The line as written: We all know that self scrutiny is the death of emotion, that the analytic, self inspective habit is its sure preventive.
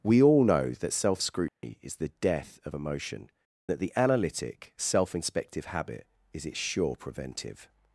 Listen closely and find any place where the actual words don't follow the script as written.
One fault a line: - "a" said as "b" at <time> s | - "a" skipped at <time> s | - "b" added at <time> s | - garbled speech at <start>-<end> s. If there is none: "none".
none